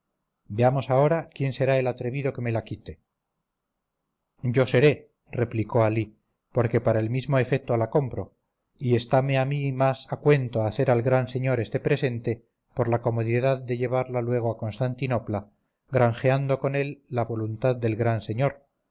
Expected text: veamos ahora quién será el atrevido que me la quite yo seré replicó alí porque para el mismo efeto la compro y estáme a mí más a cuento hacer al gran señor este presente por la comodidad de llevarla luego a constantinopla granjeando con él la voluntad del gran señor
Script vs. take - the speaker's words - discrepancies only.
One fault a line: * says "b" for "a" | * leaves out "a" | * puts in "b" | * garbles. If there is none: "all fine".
all fine